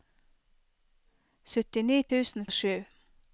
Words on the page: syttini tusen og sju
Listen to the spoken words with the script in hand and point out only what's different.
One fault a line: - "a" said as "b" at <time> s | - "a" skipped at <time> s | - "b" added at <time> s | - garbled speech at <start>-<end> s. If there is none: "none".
none